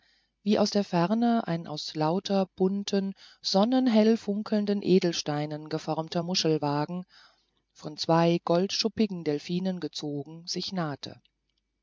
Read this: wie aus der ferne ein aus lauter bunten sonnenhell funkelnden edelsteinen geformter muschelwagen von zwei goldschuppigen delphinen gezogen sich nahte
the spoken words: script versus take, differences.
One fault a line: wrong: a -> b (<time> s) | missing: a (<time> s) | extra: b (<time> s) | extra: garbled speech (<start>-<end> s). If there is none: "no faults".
no faults